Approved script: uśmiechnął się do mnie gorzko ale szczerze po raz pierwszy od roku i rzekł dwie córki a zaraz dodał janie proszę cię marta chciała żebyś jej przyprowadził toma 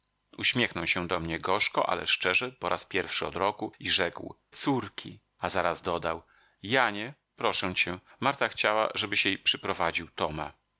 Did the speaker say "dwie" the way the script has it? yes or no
no